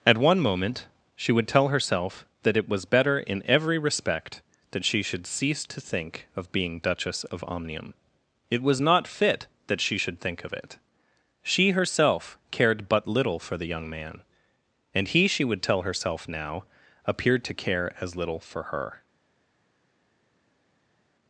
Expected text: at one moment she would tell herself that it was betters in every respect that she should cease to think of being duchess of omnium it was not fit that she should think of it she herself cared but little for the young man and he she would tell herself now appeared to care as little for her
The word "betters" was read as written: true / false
false